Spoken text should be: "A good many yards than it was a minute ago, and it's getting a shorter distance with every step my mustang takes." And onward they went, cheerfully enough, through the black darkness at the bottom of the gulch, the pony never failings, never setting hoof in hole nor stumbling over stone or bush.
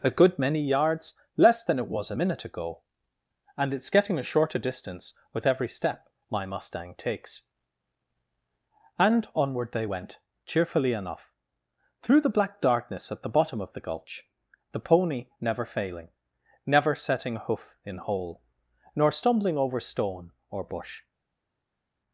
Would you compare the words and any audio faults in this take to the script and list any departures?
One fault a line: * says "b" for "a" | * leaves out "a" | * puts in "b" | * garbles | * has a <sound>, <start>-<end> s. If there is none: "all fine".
* puts in "less"
* says "failing" for "failings"